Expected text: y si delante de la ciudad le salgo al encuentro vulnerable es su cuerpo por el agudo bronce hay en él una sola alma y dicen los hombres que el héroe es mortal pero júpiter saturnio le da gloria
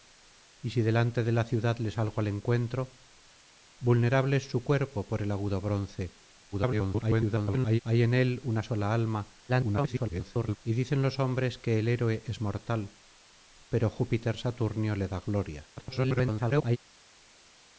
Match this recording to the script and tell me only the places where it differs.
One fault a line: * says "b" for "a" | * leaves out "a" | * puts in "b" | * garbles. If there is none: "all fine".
* garbles
* garbles
* garbles